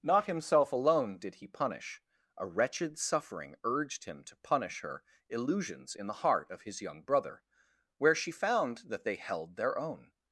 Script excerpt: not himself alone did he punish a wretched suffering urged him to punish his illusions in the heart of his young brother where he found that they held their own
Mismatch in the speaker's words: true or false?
true